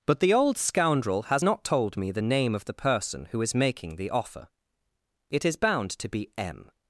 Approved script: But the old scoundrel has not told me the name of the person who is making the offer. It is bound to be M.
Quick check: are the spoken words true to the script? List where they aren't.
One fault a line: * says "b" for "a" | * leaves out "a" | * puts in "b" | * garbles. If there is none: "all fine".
all fine